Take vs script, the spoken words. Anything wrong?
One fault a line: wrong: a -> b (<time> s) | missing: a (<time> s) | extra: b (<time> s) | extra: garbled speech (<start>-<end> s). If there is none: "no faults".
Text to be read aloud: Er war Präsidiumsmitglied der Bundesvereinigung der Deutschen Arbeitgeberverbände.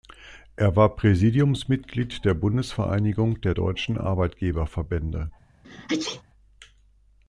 no faults